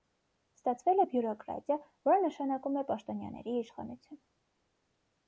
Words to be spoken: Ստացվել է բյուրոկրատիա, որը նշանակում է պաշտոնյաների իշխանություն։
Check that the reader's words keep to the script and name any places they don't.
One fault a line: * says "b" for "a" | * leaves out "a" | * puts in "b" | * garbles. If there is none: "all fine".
all fine